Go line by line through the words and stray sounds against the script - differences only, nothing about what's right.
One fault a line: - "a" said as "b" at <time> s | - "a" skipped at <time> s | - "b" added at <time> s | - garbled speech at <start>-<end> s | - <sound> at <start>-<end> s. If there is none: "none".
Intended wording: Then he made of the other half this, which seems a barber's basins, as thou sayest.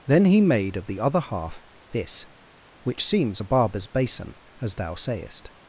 - "basins" said as "basin" at 3.9 s